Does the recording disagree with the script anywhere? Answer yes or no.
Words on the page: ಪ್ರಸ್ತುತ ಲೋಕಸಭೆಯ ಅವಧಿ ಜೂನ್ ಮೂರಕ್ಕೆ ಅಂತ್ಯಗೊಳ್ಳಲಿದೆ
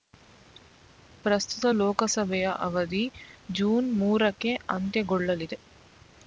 no